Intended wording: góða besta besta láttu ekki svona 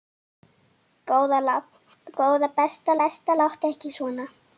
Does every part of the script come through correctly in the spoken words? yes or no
yes